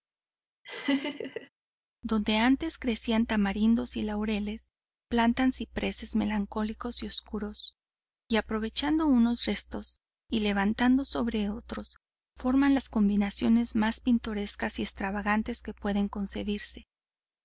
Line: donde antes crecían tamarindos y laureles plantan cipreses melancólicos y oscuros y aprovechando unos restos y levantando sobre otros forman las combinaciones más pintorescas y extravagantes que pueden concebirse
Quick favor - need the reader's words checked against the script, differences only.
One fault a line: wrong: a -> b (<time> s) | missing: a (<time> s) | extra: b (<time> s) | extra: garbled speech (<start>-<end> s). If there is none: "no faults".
no faults